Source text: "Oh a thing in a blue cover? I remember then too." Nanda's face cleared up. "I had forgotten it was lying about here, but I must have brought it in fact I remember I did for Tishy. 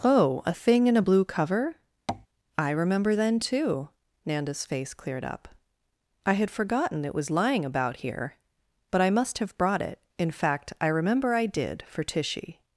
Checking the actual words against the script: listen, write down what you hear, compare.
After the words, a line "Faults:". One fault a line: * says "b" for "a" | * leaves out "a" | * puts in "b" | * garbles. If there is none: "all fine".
"Oh a thing in a blue cover? I remember then too." Nanda's face cleared up. "I had forgotten it was lying about here, but I must have brought it in fact I remember I did for Tishy.
Faults:
all fine